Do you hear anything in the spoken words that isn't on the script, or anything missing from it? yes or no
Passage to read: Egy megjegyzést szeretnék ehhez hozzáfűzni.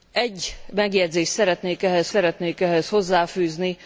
yes